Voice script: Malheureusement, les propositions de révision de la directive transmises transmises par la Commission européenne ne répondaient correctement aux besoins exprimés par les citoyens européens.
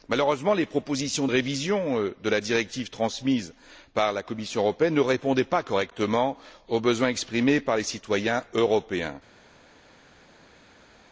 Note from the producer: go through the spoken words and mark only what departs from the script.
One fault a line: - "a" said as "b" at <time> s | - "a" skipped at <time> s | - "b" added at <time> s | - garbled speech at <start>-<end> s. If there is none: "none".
- "transmises" skipped at 3.5 s
- "pas" added at 5.4 s